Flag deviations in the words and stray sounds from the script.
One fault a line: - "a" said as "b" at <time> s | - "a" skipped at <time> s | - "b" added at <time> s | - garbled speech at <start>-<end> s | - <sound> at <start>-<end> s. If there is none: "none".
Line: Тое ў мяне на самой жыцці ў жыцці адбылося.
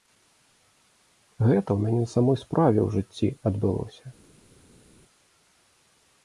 - "Тое" said as "Гэта" at 1.5 s
- "жыцці" said as "справе" at 2.4 s